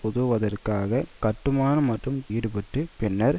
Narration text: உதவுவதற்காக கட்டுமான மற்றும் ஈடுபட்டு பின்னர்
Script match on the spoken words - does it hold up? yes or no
yes